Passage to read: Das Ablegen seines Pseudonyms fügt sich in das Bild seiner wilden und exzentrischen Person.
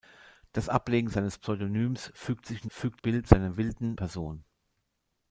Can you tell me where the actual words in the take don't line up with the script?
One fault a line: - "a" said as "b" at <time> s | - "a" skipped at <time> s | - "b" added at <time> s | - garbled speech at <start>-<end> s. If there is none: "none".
- "das" said as "fügt" at 2.7 s
- "und exzentrischen" skipped at 4.0 s